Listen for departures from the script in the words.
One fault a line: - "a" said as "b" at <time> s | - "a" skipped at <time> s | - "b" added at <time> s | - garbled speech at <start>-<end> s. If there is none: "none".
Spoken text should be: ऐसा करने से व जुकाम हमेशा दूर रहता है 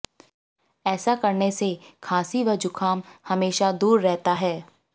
- "खांसी" added at 2.0 s